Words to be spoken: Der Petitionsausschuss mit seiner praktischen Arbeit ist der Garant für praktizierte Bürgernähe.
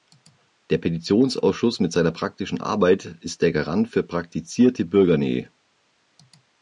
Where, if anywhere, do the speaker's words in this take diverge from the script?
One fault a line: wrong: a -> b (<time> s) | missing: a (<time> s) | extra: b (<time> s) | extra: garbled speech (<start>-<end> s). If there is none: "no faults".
no faults